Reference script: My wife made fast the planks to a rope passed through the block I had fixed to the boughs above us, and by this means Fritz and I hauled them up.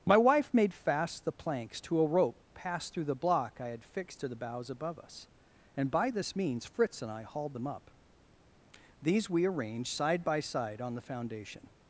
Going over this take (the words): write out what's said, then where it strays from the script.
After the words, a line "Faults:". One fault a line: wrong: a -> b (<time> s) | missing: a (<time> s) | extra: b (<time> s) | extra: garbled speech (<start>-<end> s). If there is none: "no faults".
My wife made fast the planks to a rope passed through the block I had fixed to the boughs above us, and by this means Fritz and I hauled them up. These we arranged side by side on the foundation
Faults:
extra: These we arranged side by side on the foundation (9.0 s)